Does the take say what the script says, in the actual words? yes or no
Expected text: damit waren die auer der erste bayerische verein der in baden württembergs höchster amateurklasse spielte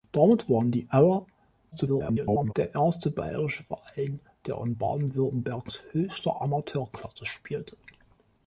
no